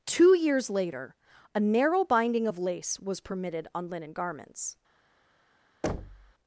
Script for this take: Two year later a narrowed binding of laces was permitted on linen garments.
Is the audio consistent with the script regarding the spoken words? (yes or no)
no